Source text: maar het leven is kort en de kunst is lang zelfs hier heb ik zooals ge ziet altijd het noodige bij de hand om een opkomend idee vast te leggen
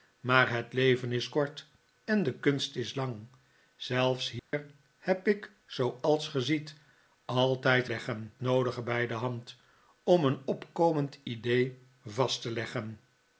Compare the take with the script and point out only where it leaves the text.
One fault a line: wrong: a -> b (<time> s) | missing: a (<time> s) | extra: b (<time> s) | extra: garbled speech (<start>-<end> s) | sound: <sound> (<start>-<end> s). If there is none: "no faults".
sound: dropout (4.4-4.5 s)
wrong: het -> leggen (7.8 s)